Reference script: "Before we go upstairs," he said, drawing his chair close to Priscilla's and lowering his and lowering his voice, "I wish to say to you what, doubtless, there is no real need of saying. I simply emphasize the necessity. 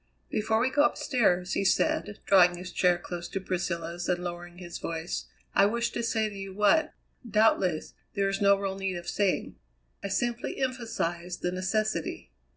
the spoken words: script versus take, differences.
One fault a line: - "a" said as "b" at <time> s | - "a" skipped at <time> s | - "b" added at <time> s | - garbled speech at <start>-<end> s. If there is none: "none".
- "and lowering his" skipped at 4.8 s